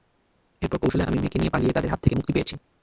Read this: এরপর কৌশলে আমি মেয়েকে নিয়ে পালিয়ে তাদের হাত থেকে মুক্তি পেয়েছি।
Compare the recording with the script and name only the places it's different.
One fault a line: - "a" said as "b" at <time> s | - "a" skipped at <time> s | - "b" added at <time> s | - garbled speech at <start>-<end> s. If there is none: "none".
none